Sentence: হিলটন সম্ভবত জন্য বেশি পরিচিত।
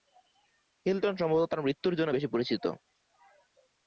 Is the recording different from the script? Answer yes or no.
yes